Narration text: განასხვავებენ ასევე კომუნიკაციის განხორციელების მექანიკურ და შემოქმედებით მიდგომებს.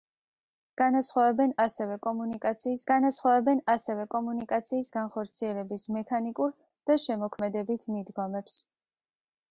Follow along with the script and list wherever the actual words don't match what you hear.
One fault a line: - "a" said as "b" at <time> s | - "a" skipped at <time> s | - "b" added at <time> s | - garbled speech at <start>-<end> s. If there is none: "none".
- "განასხვავებენ ასევე კომუნიკაციის" added at 2.9 s